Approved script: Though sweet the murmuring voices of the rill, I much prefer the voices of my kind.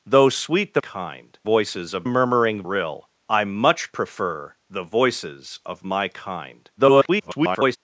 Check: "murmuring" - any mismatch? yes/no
yes